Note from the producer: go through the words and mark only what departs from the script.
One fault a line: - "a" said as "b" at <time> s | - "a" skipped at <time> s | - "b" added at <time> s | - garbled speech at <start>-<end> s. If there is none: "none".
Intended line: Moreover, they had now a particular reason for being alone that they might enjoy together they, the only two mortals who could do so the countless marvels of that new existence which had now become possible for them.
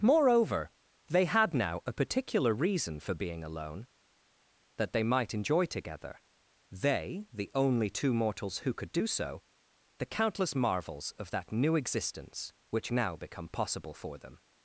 - "had" skipped at 12.9 s